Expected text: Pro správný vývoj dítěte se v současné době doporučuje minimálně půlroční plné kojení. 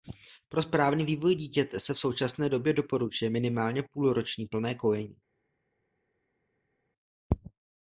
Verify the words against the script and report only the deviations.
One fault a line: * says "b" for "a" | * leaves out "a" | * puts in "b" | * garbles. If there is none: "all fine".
all fine